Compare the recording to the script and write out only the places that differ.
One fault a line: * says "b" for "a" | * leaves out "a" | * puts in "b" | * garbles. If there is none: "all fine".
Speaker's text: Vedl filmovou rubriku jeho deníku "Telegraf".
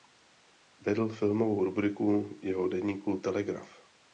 all fine